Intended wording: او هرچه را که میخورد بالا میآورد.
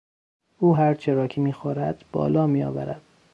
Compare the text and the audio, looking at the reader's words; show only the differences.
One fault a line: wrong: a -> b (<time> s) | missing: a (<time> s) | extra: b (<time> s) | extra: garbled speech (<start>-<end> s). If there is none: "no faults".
no faults